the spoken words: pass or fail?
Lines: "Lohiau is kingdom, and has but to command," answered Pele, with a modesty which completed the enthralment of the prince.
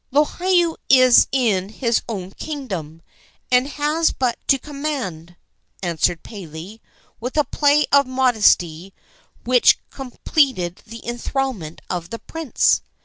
fail